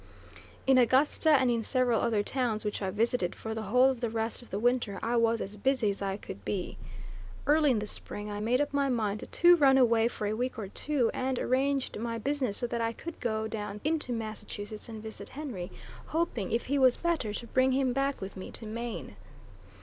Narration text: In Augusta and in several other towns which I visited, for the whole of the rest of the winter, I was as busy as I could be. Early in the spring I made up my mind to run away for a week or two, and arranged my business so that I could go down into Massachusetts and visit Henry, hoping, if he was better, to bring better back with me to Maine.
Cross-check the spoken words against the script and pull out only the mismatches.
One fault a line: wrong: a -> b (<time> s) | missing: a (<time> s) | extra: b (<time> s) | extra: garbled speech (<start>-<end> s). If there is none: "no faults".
wrong: better -> him (17.7 s)